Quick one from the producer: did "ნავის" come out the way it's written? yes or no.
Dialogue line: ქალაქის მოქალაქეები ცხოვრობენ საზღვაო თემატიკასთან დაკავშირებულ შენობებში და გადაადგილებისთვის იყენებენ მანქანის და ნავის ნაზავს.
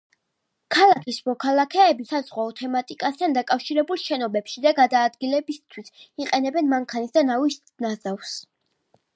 yes